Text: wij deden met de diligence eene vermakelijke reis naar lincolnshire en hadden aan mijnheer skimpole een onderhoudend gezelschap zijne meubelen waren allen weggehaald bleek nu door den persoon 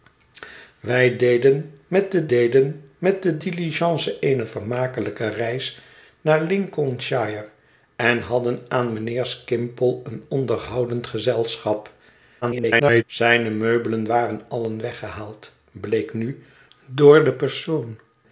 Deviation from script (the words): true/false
true